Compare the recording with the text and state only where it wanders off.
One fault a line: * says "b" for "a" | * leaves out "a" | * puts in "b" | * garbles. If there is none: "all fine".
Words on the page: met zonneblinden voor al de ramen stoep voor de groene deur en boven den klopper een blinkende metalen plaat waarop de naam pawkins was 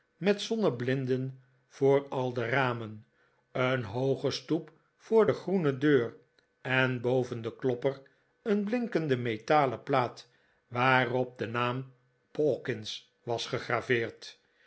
* puts in "een hooge"